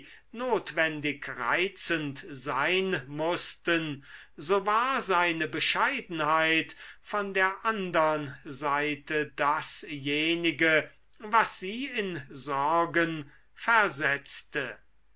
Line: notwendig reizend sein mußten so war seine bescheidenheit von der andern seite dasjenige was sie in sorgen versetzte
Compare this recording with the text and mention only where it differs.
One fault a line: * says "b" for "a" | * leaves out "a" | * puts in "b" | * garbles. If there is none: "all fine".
all fine